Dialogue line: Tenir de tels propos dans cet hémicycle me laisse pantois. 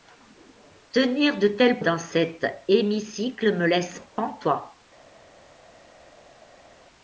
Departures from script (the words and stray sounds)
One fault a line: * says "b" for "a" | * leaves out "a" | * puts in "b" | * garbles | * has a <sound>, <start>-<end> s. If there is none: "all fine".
* leaves out "propos"